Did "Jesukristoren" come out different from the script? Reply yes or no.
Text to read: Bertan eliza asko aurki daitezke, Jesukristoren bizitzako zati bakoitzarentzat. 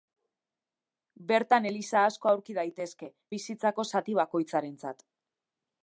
yes